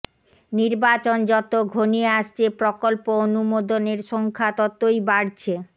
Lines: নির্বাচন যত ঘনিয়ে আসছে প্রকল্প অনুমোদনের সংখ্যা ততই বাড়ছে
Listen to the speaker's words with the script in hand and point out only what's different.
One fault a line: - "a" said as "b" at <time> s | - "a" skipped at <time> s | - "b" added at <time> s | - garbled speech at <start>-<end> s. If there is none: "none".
none